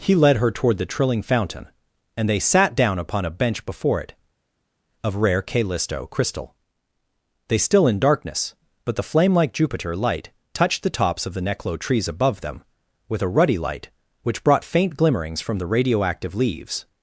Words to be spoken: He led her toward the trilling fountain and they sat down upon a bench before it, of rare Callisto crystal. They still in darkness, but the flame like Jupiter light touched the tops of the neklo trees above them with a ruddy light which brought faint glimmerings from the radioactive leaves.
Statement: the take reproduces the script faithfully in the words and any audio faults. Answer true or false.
true